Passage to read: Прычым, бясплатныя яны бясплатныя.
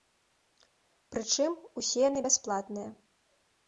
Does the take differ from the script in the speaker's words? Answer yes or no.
yes